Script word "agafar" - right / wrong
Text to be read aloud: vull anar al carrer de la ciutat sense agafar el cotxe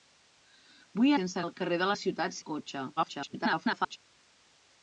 wrong